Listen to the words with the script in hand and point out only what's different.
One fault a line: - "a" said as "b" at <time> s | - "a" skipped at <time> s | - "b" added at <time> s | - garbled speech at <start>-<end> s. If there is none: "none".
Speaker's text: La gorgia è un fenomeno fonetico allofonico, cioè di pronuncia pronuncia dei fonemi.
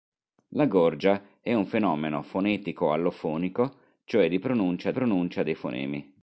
none